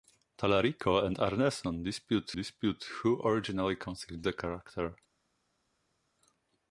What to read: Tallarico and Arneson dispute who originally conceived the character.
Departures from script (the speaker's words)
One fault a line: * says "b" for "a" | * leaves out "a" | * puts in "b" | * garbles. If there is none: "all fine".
* puts in "dispute"